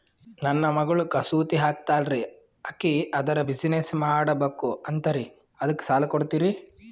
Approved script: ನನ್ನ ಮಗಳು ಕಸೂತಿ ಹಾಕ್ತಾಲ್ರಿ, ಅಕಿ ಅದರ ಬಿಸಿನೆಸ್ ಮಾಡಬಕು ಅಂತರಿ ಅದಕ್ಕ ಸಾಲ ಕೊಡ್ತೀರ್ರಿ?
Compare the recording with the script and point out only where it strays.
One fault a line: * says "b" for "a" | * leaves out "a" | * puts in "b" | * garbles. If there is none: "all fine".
all fine